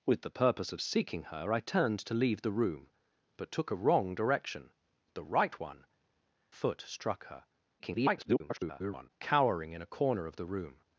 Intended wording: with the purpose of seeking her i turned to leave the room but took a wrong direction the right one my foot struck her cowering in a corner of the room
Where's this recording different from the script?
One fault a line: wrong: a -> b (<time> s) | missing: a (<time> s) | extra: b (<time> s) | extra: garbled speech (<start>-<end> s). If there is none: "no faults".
missing: my (5.8 s)
extra: garbled speech (7.8-9.1 s)